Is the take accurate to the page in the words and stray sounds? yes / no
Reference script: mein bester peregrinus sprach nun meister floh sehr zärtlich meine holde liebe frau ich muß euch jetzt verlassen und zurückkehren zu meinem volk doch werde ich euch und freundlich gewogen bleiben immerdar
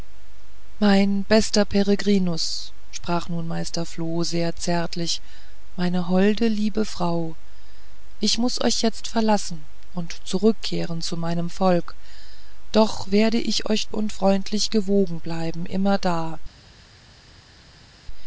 yes